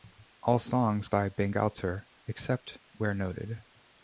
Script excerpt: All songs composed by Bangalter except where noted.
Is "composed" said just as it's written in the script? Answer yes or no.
no